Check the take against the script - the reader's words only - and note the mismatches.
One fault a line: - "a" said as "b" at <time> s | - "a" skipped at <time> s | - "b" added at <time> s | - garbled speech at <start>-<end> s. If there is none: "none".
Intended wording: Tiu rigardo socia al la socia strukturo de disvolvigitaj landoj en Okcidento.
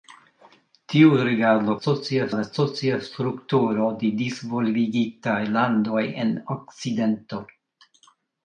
none